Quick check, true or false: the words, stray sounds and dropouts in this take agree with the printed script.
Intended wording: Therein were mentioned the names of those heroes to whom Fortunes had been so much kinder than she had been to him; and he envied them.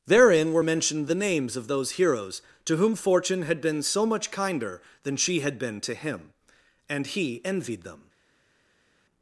false